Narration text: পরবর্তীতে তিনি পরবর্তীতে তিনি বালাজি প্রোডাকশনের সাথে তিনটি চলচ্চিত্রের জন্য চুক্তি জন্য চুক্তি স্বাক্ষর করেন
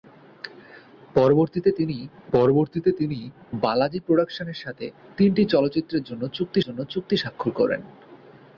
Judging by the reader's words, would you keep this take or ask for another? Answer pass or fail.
pass